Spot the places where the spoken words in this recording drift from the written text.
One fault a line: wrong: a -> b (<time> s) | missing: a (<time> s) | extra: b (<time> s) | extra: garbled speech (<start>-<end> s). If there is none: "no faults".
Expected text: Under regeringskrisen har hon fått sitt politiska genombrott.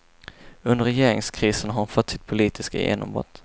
no faults